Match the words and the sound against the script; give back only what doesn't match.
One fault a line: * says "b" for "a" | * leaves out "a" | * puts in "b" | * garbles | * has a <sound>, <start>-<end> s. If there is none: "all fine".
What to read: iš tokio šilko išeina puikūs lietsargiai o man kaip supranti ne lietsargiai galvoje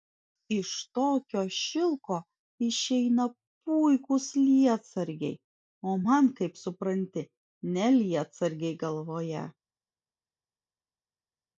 all fine